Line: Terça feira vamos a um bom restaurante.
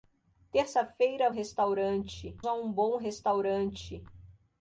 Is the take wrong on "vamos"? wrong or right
wrong